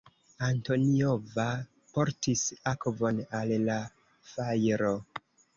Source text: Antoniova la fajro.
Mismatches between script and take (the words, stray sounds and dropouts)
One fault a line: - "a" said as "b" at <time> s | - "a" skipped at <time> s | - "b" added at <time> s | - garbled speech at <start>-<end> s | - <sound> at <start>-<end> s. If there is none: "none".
- "portis akvon al" added at 2.0 s